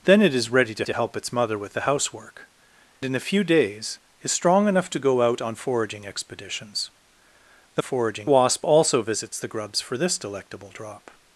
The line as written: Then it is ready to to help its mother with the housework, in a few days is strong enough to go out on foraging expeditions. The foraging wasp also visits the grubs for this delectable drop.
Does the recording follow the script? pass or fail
pass